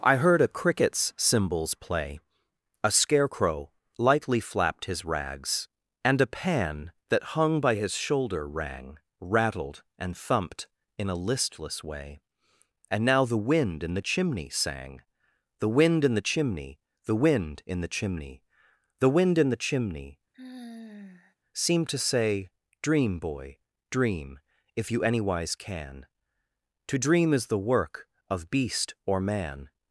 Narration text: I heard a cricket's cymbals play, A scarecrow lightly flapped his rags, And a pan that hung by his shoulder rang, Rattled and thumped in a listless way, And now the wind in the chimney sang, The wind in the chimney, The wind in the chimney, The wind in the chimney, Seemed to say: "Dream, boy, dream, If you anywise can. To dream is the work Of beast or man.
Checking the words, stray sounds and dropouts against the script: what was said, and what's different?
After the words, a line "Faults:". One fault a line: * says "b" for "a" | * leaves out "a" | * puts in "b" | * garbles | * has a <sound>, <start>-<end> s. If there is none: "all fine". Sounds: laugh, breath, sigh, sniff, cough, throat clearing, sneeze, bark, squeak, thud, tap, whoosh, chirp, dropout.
I heard a cricket's cymbals play, A scarecrow lightly flapped his rags, And a pan that hung by his shoulder rang, Rattled and thumped in a listless way, And now the wind in the chimney sang, The wind in the chimney, The wind in the chimney, The wind in the chimney, Seemed to say: "Dream, boy, dream, If you anywise can. To dream is the work Of beast or man.
Faults:
* has a sigh, 20.3-21.4 s